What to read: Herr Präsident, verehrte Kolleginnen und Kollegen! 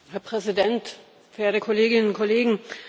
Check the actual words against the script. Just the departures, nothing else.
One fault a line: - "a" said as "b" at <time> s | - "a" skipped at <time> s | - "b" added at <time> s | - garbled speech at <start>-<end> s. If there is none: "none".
none